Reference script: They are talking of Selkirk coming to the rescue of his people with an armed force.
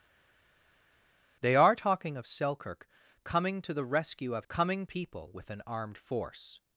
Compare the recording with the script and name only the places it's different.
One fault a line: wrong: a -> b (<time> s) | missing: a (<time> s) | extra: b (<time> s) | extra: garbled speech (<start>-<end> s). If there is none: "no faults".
wrong: his -> coming (4.5 s)